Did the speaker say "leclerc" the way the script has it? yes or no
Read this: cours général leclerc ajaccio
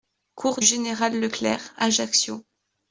yes